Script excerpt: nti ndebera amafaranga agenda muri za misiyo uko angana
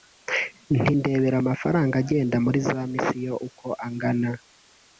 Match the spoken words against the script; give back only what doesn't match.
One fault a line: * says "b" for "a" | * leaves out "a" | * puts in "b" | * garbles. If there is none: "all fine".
all fine